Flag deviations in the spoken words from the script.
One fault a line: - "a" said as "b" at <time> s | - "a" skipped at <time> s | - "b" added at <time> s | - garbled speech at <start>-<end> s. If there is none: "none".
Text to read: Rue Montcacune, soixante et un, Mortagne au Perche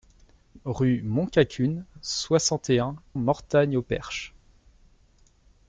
none